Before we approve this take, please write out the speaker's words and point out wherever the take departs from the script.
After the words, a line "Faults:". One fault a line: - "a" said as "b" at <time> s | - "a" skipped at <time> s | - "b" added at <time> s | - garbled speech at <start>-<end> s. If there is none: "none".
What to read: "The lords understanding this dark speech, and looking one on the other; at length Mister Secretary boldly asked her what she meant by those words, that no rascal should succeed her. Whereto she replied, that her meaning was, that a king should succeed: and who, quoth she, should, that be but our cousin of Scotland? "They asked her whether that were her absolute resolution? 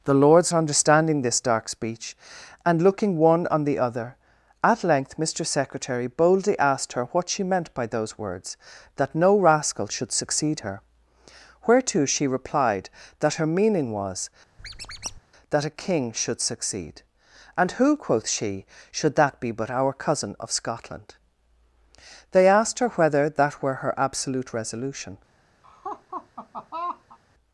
"The lords understanding this dark speech, and looking one on the other; at length Mister Secretary boldly asked her what she meant by those words, that no rascal should succeed her. Whereto she replied, that her meaning was, that a king should succeed: and who, quoth she, should, that be but our cousin of Scotland? "They asked her whether that were her absolute resolution?
Faults:
none